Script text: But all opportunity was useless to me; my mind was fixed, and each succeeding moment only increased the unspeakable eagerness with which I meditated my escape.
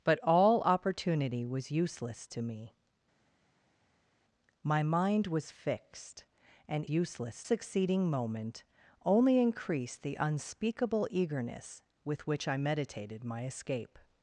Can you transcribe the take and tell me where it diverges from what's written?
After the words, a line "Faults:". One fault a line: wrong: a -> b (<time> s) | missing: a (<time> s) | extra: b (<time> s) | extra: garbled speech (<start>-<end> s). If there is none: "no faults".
But all opportunity was useless to me; my mind was fixed, and useless succeeding moment only increased the unspeakable eagerness with which I meditated my escape.
Faults:
wrong: each -> useless (6.9 s)